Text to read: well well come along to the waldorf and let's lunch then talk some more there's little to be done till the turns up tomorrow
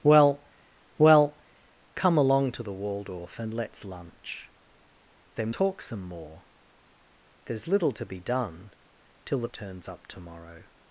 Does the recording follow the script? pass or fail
pass